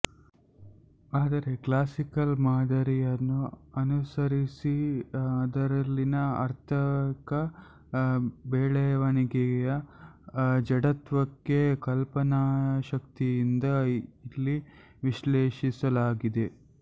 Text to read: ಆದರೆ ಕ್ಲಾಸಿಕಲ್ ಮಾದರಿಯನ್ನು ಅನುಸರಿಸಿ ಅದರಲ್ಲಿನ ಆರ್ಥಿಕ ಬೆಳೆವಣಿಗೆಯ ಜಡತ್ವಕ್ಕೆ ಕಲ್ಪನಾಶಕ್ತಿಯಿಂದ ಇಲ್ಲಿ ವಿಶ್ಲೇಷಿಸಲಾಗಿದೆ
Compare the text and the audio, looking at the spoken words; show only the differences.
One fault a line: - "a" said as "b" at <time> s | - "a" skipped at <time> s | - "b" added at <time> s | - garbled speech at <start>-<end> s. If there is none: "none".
none